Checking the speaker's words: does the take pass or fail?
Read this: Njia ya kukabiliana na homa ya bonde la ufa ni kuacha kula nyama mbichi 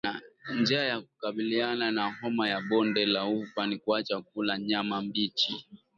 pass